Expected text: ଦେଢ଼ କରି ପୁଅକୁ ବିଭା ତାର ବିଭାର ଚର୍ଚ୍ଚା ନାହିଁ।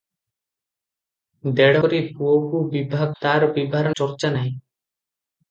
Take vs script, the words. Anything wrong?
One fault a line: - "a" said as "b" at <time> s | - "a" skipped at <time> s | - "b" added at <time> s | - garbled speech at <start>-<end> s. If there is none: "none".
none